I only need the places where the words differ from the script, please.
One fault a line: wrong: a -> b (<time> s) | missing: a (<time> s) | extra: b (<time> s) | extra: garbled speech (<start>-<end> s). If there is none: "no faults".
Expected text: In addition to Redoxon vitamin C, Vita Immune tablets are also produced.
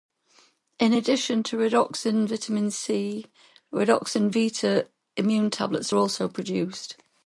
extra: Redoxon (3.7 s)